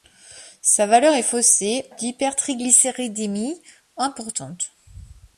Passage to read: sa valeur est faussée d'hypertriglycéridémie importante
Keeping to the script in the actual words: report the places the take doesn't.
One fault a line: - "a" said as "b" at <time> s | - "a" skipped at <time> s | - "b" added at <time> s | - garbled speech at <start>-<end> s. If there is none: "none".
none